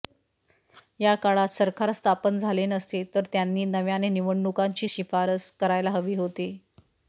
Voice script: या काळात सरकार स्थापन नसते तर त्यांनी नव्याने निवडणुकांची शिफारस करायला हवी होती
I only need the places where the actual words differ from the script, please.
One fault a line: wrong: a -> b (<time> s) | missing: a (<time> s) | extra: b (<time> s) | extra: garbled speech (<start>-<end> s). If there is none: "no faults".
extra: झाले (2.4 s)